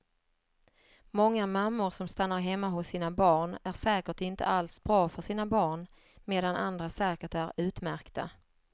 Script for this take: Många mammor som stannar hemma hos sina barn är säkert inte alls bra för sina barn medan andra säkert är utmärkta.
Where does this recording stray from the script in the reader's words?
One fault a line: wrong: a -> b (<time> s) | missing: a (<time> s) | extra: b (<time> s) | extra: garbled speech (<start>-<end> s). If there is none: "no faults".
no faults